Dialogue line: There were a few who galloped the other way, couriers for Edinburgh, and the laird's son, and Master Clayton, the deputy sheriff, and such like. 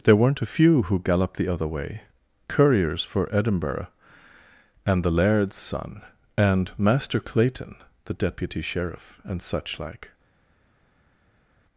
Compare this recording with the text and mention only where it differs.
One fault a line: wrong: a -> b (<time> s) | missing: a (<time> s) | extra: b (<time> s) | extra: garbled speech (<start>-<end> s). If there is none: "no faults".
wrong: were -> weren't (0.1 s)